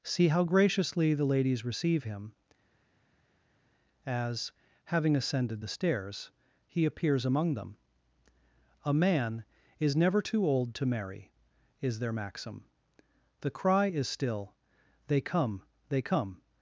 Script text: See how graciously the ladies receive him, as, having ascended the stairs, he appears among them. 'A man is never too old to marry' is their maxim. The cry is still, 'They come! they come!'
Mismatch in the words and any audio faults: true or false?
false